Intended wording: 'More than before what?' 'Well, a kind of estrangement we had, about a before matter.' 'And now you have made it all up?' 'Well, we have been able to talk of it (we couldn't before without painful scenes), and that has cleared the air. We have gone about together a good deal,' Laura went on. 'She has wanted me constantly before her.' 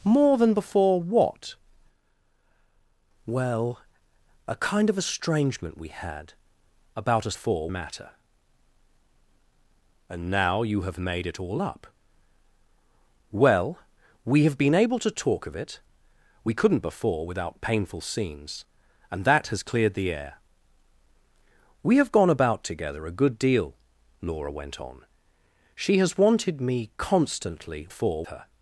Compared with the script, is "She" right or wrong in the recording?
right